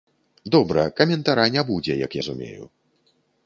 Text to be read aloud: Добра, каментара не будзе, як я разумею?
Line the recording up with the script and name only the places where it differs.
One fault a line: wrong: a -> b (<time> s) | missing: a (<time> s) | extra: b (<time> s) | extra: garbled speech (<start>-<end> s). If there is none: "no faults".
missing: я (2.1 s)